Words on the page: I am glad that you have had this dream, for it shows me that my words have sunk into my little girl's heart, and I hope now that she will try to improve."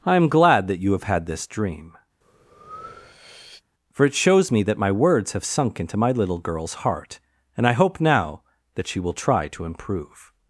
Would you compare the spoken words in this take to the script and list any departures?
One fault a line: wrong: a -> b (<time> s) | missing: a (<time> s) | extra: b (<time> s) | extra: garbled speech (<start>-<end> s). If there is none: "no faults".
no faults